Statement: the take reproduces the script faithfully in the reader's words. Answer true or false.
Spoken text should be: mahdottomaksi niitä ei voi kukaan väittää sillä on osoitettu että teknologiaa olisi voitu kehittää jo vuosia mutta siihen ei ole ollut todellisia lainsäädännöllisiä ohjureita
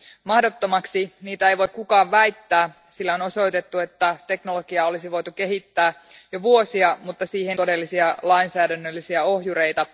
false